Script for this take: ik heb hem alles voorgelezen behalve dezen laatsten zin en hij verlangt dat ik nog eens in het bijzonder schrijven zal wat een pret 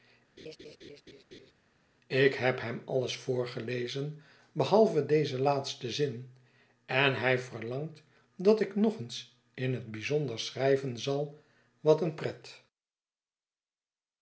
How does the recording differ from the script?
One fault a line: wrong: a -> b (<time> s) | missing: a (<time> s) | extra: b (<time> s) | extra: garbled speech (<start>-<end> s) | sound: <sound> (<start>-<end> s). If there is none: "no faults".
sound: laugh (0.4-1.5 s)